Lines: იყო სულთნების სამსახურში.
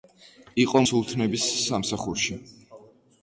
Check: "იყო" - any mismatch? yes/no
no